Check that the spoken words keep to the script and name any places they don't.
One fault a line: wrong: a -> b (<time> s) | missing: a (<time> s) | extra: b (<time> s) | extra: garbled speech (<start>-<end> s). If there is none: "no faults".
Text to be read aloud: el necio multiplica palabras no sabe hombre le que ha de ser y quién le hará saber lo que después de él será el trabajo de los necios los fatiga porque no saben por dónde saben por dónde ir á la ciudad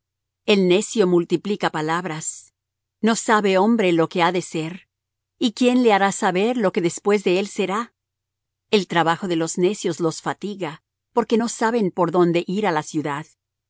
wrong: le -> lo (3.9 s)
missing: saben por dónde (12.4 s)